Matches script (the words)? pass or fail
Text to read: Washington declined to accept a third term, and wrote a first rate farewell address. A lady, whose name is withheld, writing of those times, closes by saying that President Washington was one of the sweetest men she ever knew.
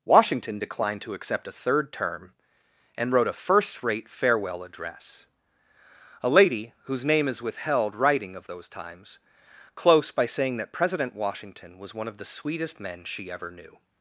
fail